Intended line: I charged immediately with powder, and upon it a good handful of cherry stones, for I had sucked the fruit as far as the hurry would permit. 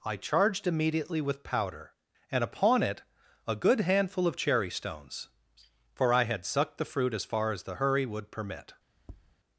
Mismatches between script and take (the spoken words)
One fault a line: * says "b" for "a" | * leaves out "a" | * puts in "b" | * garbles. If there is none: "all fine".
all fine